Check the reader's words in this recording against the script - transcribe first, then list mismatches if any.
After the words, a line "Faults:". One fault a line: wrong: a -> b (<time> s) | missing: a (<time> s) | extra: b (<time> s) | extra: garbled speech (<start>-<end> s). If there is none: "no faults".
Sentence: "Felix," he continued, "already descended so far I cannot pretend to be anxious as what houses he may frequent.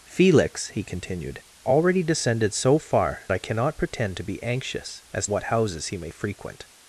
"Felix," he continued, "already descended so far I cannot pretend to be anxious as what houses he may frequent.
Faults:
no faults